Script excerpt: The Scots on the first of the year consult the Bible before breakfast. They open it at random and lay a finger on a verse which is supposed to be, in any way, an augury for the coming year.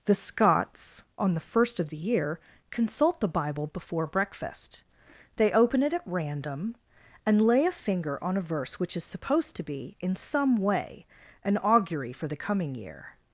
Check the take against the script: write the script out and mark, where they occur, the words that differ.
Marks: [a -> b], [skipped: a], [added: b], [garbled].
The Scots on the first of the year consult the Bible before breakfast. They open it at random and lay a finger on a verse which is supposed to be, in [any -> some] way, an augury for the coming year.